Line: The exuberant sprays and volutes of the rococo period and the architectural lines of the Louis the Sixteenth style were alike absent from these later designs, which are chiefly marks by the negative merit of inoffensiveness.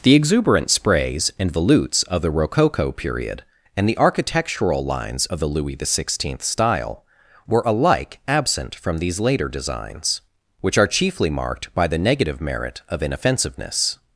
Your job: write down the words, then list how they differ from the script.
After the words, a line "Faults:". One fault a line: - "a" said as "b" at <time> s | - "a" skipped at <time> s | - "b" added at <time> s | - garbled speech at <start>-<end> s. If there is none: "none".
The exuberant sprays and volutes of the rococo period and the architectural lines of the Louis the Sixteenth style were alike absent from these later designs, which are chiefly marked by the negative merit of inoffensiveness.
Faults:
- "marks" said as "marked" at 11.3 s